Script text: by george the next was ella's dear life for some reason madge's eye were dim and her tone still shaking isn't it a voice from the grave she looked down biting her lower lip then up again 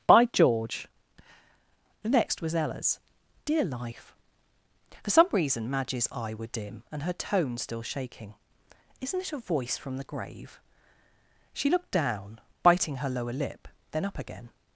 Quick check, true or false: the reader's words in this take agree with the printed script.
true